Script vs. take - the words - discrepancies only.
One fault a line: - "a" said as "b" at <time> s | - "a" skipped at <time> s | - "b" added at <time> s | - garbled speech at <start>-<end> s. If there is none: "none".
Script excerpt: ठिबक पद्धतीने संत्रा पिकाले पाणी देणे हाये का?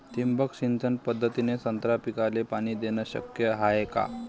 - "सिंचन" added at 0.5 s
- "शक्य" added at 3.0 s